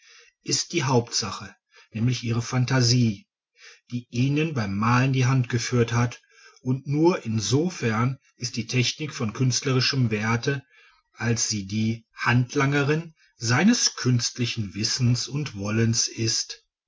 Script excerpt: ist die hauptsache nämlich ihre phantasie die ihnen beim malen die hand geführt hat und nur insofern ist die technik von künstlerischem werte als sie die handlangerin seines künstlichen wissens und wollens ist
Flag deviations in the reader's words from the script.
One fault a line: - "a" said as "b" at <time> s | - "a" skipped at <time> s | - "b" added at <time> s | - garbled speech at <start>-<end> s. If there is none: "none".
none